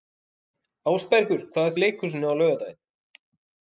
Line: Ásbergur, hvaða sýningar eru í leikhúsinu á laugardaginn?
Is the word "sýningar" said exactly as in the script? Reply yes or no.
no